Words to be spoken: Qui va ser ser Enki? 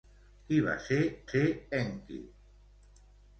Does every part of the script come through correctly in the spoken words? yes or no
yes